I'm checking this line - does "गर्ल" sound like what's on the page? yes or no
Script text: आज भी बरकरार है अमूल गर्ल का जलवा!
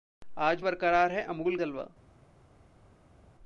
no